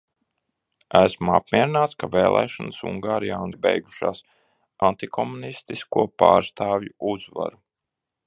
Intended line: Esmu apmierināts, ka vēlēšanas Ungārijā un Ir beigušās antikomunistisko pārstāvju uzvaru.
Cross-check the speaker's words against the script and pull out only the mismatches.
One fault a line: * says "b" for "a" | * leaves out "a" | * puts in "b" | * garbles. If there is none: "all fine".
all fine